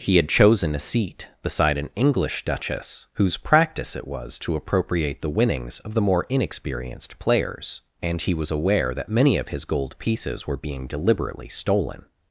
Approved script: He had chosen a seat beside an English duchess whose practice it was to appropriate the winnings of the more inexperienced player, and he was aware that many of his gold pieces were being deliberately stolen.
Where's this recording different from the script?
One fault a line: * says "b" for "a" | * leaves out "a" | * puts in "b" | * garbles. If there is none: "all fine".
* says "players" for "player"